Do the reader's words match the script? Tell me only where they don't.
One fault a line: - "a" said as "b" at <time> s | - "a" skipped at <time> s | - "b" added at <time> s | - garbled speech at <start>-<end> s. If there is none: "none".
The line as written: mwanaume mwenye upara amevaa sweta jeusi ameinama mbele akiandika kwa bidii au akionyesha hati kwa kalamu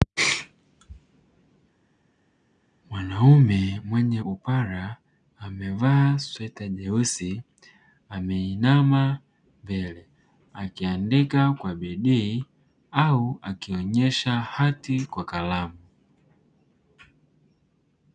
none